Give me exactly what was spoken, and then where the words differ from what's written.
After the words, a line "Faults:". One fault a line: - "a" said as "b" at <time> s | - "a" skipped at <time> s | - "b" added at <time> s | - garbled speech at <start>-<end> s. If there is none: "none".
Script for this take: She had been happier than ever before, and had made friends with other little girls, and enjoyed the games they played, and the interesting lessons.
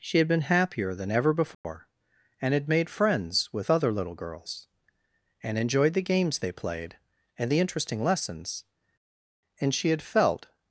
She had been happier than ever before, and had made friends with other little girls, and enjoyed the games they played, and the interesting lessons. And she had felt
Faults:
- "And she had felt" added at 9.6 s